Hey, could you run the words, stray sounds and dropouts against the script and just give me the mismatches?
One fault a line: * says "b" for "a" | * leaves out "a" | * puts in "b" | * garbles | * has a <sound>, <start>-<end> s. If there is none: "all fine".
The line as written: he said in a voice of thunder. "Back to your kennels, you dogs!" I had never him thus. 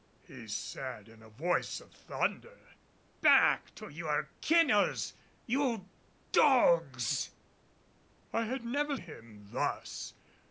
all fine